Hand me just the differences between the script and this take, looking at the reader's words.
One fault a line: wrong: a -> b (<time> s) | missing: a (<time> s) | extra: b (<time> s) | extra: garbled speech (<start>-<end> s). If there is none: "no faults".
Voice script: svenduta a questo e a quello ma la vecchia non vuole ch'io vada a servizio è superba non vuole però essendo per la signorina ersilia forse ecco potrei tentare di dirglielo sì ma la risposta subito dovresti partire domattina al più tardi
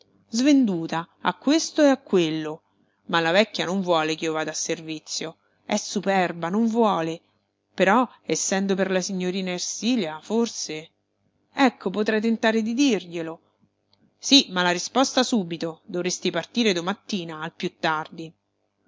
no faults